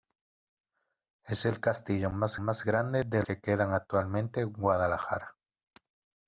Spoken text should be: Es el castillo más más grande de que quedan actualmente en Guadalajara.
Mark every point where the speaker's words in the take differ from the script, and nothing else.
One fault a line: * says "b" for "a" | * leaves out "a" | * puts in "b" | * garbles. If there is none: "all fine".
all fine